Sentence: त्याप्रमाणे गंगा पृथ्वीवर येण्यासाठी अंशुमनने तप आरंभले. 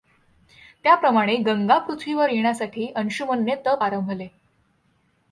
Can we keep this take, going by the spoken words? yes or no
yes